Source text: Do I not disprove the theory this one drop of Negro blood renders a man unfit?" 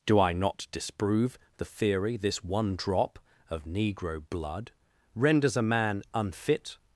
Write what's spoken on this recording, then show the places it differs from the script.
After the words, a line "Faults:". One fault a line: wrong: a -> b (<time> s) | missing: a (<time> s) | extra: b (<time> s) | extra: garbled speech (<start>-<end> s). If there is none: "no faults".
Do I not disprove the theory this one drop of Negro blood renders a man unfit?"
Faults:
no faults